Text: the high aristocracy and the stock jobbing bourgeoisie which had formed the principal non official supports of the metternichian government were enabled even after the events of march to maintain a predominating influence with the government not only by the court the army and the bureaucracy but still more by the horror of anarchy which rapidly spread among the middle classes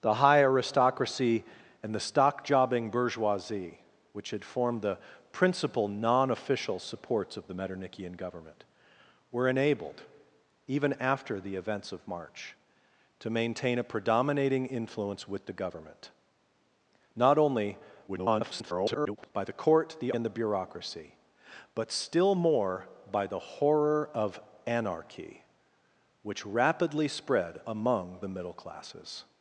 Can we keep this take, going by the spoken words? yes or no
no